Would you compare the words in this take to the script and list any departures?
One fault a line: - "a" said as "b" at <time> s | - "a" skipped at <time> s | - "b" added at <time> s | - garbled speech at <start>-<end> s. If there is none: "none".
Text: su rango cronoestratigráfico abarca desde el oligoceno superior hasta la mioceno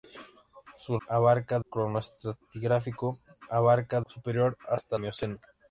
- "rango" said as "abarca" at 1.1 s
- "desde el oligoceno" skipped at 4.0 s
- "la" skipped at 5.0 s